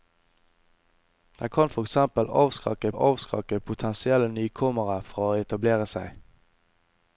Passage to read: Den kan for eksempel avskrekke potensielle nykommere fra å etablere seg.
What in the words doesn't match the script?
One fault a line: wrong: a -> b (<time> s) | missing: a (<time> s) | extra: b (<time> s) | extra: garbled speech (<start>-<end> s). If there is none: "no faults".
extra: avskrekke (2.9 s)